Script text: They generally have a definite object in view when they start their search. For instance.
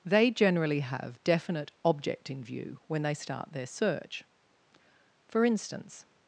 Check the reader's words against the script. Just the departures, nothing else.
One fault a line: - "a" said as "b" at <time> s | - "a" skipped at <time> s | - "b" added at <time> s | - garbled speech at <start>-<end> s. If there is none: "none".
- "a" skipped at 1.2 s